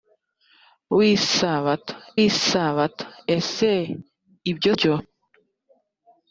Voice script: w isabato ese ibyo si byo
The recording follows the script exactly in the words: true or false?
false